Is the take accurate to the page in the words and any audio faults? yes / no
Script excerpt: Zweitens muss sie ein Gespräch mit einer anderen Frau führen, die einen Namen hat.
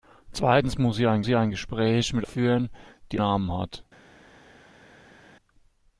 no